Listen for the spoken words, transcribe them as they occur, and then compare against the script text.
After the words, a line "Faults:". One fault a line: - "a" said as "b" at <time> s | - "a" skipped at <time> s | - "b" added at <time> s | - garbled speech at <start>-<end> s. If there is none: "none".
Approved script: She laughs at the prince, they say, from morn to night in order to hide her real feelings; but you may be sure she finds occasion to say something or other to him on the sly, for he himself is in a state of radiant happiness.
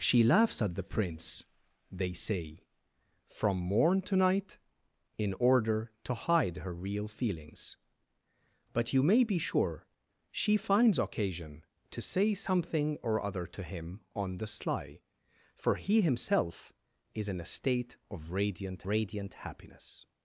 She laughs at the prince, they say, from morn to night in order to hide her real feelings; but you may be sure she finds occasion to say something or other to him on the sly, for he himself is in a state of radiant radiant happiness.
Faults:
- "radiant" added at 18.9 s